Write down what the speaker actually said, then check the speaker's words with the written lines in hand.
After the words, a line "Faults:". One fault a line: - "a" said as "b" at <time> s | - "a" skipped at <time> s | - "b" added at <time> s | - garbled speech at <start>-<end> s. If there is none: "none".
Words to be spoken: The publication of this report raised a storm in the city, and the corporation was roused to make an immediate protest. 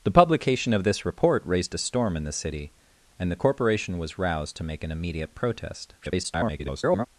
The publication of this report raised a storm in the city, and the corporation was roused to make an immediate protest. [garbled]
Faults:
- garbled speech at 6.0-7.1 s